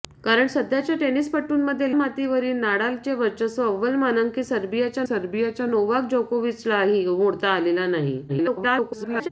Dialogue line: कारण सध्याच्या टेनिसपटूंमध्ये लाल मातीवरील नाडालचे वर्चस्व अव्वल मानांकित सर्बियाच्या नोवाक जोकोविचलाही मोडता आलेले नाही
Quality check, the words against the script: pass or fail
fail